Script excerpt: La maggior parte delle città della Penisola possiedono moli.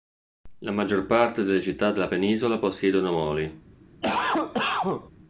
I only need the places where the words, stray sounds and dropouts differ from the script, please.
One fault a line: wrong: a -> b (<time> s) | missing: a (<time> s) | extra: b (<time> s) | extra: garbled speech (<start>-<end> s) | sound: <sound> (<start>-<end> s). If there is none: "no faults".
sound: cough (4.0-5.1 s)